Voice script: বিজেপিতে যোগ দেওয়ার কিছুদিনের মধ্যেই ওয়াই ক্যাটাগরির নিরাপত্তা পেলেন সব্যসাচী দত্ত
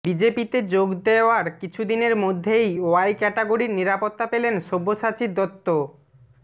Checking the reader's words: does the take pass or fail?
pass